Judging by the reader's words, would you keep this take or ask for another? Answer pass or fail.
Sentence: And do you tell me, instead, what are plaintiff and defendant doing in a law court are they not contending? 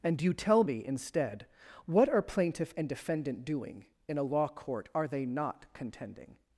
fail